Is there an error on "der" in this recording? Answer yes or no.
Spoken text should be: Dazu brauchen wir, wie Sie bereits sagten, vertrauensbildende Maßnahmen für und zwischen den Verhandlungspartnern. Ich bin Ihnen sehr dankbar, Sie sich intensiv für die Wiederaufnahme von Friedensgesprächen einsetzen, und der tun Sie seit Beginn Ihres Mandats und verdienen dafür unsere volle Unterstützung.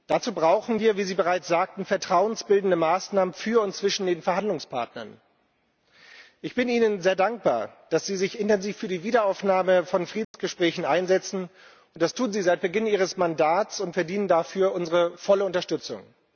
yes